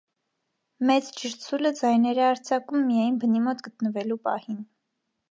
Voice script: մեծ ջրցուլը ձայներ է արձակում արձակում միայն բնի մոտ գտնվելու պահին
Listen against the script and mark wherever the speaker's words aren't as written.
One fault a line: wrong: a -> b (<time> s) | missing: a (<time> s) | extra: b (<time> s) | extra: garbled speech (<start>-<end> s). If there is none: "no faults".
missing: արձակում (2.9 s)